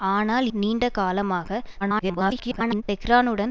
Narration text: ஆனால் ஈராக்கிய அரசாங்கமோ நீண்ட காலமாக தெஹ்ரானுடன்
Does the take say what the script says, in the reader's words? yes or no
no